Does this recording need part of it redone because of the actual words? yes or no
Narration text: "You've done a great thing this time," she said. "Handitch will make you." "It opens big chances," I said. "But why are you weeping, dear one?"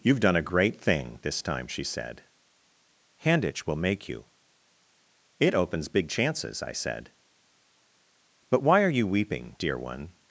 no